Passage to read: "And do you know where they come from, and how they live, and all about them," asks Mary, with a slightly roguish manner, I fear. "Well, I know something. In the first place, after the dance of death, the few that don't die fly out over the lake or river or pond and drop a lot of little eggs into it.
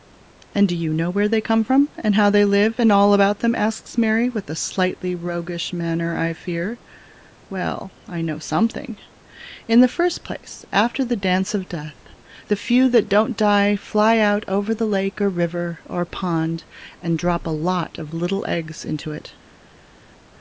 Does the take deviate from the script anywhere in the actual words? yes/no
no